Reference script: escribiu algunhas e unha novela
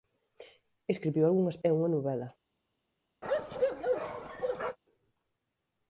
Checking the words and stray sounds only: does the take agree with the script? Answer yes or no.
no